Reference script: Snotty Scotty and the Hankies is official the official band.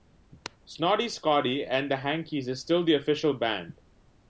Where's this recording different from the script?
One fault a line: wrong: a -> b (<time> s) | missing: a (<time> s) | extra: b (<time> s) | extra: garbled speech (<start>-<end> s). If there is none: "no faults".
wrong: official -> still (2.6 s)